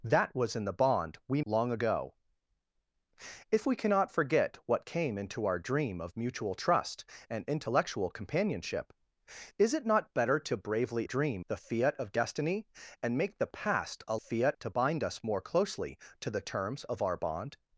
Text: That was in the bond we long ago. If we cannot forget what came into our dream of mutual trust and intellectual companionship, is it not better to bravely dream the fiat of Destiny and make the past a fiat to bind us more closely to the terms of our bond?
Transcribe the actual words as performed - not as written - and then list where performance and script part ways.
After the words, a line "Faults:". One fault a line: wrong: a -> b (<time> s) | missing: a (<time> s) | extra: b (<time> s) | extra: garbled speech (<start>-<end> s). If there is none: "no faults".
That was in the bond we long ago. If we cannot forget what came into our dream of mutual trust and intellectual companionship, is it not better to bravely dream the fiat of Destiny and make the past a fiat to bind us more closely to the terms of our bond?
Faults:
no faults